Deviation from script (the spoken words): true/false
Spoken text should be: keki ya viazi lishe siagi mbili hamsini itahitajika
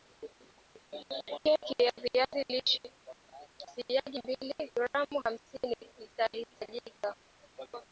true